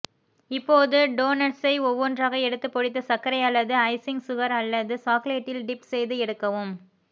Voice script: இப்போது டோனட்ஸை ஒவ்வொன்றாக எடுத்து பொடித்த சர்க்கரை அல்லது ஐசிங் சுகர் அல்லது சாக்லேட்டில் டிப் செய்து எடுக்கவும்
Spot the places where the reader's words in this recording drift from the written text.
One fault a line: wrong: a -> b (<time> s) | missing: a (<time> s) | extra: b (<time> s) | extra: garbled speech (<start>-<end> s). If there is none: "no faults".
no faults